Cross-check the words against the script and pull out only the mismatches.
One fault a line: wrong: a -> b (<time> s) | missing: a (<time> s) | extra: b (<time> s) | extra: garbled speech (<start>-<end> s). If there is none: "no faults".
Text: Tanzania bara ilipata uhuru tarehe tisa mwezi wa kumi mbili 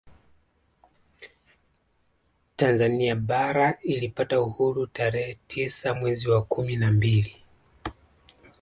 extra: na (6.8 s)